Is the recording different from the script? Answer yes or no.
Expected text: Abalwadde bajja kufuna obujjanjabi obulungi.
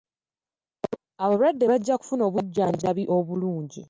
no